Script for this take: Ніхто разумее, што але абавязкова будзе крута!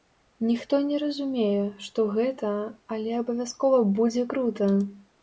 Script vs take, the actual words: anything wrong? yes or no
yes